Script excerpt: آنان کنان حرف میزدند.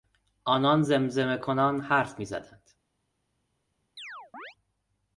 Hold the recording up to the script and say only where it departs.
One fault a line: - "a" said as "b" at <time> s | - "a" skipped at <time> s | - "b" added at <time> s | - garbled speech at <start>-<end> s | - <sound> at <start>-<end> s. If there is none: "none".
- "زمزمه" added at 0.8 s
- chirp at 4.0-4.6 s